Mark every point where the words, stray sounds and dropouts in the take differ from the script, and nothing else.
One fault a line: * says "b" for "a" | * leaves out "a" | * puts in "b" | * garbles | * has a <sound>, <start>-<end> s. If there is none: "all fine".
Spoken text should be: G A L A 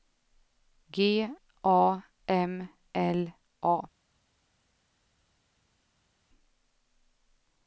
* puts in "M"